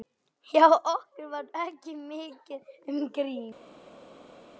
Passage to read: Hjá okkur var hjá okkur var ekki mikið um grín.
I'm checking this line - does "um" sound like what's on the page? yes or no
yes